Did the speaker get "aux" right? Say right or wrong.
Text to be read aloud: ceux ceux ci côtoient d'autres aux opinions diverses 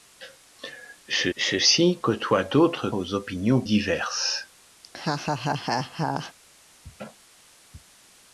right